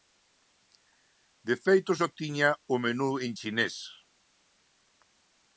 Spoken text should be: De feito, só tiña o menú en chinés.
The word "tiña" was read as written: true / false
true